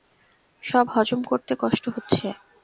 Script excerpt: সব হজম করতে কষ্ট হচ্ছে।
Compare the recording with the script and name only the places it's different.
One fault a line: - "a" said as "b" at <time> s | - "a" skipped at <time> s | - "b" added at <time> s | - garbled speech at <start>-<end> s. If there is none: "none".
none